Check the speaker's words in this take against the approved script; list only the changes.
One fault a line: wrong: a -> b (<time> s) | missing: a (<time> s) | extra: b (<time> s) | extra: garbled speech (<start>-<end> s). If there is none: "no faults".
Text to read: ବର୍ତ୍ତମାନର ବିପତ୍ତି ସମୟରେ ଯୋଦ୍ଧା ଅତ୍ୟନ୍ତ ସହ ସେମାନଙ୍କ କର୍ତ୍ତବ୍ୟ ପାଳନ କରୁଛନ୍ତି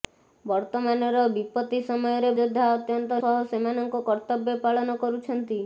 no faults